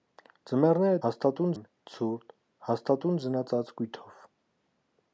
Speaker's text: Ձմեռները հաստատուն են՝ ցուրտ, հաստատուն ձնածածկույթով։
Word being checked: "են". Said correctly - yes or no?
yes